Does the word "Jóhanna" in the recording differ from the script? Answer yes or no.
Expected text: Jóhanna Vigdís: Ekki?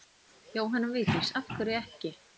no